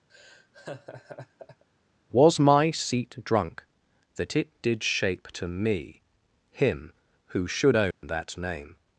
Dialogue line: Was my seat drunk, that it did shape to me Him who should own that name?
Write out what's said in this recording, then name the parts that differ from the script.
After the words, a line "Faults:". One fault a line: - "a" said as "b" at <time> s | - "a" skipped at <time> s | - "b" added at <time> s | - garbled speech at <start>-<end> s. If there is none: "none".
Was my seat drunk, that it did shape to me Him who should own that name?
Faults:
none